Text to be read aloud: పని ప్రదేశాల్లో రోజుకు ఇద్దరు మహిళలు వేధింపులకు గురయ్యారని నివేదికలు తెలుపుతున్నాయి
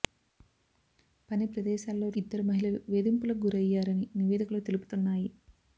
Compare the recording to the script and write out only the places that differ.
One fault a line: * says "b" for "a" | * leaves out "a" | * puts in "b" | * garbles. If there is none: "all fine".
* leaves out "రోజుకు"